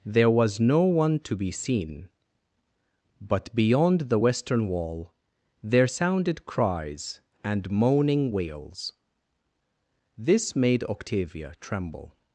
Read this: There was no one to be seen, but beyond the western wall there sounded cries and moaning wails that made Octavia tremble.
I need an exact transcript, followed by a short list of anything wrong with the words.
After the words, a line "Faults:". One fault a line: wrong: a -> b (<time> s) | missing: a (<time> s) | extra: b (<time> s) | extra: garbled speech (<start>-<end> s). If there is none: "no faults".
There was no one to be seen, but beyond the western wall there sounded cries and moaning wails this made Octavia tremble.
Faults:
wrong: that -> this (10.2 s)